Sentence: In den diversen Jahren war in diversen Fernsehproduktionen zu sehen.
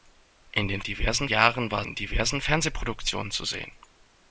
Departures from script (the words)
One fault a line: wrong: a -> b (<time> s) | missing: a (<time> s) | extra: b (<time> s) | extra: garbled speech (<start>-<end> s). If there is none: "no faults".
no faults